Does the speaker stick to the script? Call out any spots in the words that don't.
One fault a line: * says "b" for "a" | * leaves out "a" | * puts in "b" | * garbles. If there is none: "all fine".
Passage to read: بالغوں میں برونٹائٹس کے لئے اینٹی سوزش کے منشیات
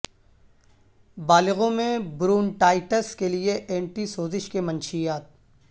all fine